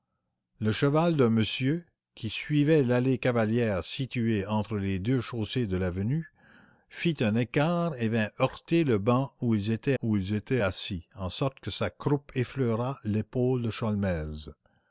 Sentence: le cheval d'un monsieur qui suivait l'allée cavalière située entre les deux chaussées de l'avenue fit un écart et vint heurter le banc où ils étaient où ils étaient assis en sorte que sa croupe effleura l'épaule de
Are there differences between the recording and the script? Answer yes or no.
no